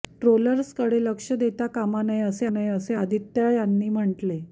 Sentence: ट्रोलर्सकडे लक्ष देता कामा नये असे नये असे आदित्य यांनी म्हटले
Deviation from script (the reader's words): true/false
false